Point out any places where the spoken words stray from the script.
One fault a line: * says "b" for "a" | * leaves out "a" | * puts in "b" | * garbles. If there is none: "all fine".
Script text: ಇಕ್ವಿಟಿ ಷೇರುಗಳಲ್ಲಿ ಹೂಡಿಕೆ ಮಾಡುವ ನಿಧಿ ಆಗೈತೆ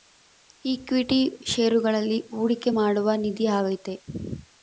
all fine